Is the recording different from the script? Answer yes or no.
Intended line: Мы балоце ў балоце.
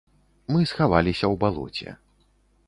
yes